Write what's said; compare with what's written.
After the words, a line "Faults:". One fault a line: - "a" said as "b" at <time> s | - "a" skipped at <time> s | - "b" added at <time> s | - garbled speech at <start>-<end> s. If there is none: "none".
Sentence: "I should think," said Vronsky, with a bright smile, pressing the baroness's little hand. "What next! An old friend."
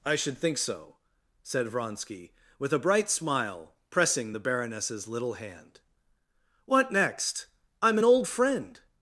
"I should think so," said Vronsky, with a bright smile, pressing the baroness's little hand. "What next! I'm an old friend."
Faults:
- "so" added at 0.6 s
- "I'm" added at 7.8 s